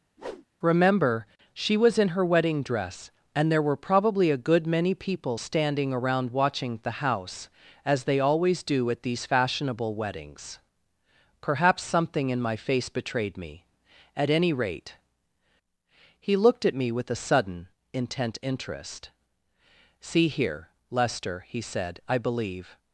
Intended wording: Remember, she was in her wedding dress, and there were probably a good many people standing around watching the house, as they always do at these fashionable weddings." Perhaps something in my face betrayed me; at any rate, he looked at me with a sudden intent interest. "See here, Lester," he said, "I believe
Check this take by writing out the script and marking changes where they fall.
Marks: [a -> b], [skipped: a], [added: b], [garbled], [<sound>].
[whoosh] Remember, she was in her wedding dress, and there were probably a good many people standing around watching the house, as they always do at these fashionable weddings." Perhaps something in my face betrayed me; at any rate, he looked at me with a sudden intent interest. "See here, Lester," he said, "I believe